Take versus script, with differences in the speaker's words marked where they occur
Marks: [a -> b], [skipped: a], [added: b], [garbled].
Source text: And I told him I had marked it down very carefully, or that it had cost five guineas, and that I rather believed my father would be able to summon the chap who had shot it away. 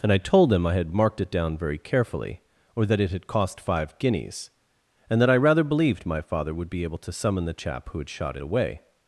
And I told him I had marked it down very carefully, or that it had cost five guineas, and that I rather believed my father would be able to summon the chap who had shot it away.